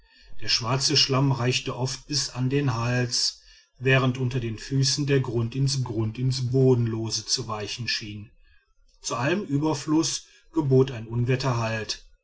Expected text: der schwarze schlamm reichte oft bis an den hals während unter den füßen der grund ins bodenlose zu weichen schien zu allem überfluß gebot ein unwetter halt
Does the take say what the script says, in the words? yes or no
no